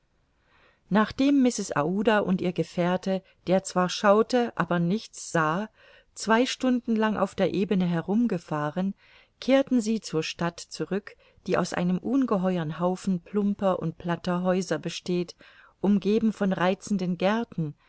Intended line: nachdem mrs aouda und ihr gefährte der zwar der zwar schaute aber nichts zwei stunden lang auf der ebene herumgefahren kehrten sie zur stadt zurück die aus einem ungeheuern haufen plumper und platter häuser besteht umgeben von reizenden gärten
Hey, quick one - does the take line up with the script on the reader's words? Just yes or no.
no